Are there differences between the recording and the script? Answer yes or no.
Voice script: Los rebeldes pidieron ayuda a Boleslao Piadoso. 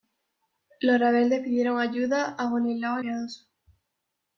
no